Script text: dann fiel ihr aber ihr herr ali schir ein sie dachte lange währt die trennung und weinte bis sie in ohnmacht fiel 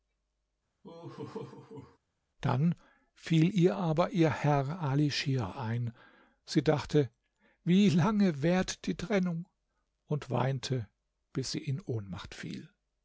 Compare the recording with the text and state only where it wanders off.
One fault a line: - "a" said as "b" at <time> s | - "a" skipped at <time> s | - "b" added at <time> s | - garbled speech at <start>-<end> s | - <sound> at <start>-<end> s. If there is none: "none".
- laugh at 0.8-2.0 s
- "wie" added at 7.6 s